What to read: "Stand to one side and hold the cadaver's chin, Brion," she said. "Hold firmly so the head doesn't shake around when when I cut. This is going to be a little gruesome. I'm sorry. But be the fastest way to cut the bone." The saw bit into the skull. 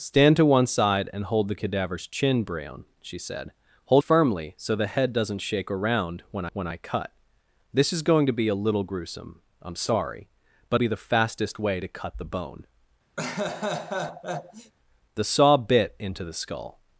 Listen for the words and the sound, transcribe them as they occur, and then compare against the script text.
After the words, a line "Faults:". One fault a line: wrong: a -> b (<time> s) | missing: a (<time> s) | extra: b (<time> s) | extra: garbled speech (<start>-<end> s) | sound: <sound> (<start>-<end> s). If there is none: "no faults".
"Stand to one side and hold the cadaver's chin, Brion," she said. "Hold firmly so the head doesn't shake around when when I cut. This is going to be a little gruesome. I'm sorry. But be the fastest way to cut the bone." The saw bit into the skull.
Faults:
sound: laugh (13.2-14.7 s)